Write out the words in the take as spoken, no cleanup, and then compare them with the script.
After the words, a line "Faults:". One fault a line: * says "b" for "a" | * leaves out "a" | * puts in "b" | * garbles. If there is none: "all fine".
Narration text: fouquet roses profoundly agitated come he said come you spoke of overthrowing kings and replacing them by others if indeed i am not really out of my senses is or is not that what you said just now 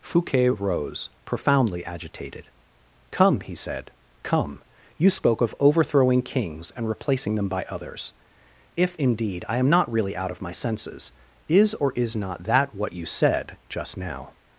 fouquet rose profoundly agitated come he said come you spoke of overthrowing kings and replacing them by others if indeed i am not really out of my senses is or is not that what you said just now
Faults:
* says "rose" for "roses"